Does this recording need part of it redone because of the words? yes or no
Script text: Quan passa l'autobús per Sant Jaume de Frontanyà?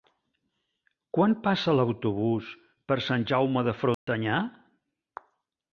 no